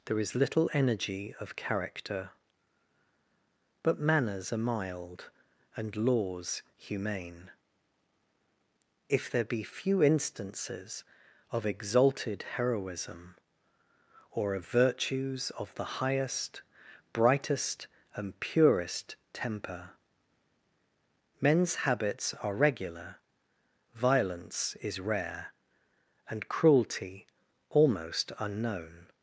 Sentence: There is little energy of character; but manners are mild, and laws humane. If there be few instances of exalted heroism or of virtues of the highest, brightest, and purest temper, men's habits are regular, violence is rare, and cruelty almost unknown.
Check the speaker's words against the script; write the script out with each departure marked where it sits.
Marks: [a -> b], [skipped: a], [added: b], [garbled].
There is little energy of character; but manners are mild, and laws humane. If there be few instances of exalted heroism or of virtues of the highest, brightest, and purest temper, men's habits are regular, violence is rare, and cruelty almost unknown.